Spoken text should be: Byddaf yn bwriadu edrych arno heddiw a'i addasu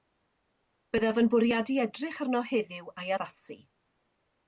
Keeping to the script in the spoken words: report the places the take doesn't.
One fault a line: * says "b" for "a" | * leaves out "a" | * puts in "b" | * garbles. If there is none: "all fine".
all fine